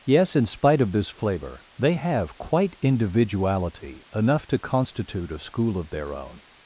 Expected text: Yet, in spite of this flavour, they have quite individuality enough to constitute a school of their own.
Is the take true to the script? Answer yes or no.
no